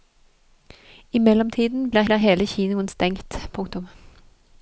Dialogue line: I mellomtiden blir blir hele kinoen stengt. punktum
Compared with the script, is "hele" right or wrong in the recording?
right